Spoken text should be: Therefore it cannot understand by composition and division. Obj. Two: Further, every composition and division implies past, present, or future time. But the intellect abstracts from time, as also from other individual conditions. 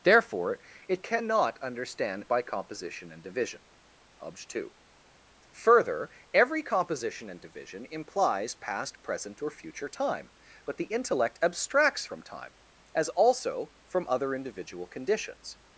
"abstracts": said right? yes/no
yes